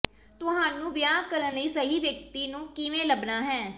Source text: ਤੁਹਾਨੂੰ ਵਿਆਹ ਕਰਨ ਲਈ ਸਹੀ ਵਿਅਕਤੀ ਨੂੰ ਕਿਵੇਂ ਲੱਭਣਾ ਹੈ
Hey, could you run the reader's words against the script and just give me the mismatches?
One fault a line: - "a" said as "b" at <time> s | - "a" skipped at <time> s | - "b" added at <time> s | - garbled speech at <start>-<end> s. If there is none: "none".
none